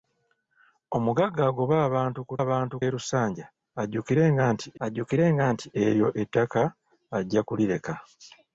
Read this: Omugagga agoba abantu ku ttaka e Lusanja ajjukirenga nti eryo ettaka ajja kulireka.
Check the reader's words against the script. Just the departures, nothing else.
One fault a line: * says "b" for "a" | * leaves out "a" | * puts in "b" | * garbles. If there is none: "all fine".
* says "abantu" for "ttaka"
* puts in "ajjukirenga nti"